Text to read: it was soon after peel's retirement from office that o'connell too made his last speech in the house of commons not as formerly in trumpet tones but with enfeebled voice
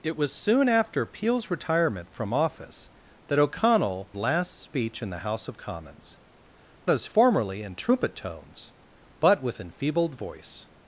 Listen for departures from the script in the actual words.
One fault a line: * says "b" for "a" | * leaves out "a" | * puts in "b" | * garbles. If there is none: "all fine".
* leaves out "too made his"
* leaves out "not"